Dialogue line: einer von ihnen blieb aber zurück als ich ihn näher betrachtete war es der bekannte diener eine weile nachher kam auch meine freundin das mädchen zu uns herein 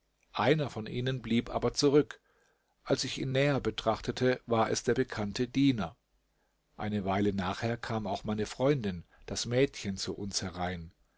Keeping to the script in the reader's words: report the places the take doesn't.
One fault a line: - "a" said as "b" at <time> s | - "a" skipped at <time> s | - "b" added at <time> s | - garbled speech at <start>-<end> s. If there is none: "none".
none